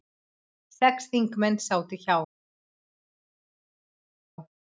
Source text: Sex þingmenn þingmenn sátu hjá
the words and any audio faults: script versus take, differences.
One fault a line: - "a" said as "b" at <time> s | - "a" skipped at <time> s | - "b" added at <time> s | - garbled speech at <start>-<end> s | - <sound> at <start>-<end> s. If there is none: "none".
- "þingmenn" skipped at 1.6 s